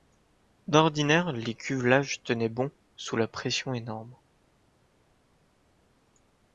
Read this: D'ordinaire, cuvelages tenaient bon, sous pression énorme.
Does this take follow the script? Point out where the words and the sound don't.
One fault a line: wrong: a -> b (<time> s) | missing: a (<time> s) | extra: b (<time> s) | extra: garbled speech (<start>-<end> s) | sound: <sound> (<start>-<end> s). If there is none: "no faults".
extra: les (1.3 s)
extra: la (3.2 s)